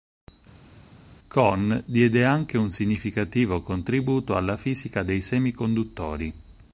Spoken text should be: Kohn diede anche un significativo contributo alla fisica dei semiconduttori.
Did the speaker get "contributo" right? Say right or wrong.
right